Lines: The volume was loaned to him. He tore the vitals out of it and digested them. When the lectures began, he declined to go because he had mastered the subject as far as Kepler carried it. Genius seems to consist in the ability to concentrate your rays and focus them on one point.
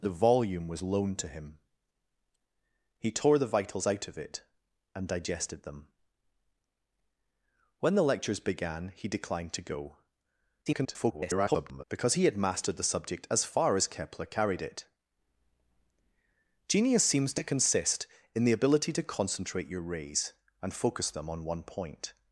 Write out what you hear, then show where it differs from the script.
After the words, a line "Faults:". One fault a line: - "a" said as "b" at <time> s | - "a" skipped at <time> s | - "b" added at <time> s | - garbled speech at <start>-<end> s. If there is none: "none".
The volume was loaned to him. He tore the vitals out of it and digested them. When the lectures began, he declined to go [garbled] because he had mastered the subject as far as Kepler carried it. Genius seems to consist in the ability to concentrate your rays and focus them on one point.
Faults:
- garbled speech at 10.7-11.8 s